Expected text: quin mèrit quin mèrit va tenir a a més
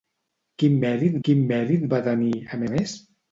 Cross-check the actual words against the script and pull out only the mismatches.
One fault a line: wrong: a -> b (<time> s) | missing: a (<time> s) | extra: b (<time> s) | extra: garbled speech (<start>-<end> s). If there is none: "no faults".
no faults